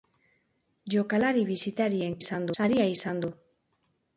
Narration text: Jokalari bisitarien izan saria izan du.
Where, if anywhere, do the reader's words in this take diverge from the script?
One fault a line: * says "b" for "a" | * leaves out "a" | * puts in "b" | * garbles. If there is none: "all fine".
all fine